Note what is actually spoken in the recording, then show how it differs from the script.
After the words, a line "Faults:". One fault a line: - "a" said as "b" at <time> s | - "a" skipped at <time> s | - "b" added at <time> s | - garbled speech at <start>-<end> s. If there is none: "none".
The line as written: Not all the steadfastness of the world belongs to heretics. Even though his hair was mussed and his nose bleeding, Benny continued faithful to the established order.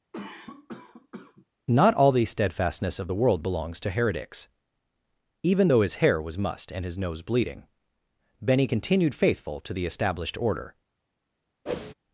Not all the steadfastness of the world belongs to heretics. Even though his hair was mussed and his nose bleeding, Benny continued faithful to the established order.
Faults:
none